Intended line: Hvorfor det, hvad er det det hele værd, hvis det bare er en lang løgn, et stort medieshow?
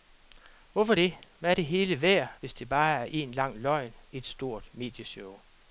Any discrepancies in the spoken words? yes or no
yes